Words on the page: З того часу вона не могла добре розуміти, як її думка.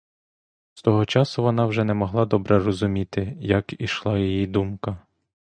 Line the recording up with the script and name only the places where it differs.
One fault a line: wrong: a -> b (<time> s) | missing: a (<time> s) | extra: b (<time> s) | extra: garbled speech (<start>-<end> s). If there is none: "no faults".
extra: вже (1.6 s)
extra: ішла (3.8 s)